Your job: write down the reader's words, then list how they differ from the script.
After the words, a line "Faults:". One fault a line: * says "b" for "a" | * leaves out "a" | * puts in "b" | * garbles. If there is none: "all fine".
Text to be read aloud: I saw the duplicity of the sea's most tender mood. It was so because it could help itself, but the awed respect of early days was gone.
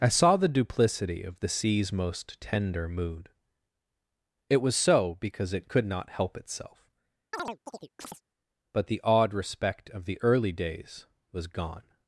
I saw the duplicity of the sea's most tender mood. It was so because it could not help itself, but the awed respect of the early days was gone.
Faults:
* puts in "not"
* puts in "the"